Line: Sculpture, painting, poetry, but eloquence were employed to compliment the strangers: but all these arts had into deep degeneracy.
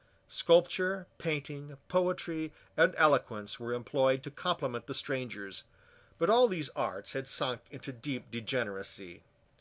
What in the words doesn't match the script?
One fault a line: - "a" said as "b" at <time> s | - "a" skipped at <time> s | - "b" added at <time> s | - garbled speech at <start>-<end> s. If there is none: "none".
- "but" said as "and" at 2.8 s
- "sunk" added at 7.3 s